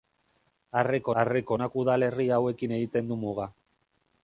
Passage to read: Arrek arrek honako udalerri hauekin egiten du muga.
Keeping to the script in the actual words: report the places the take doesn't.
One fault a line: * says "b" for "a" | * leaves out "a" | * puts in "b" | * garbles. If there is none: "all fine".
all fine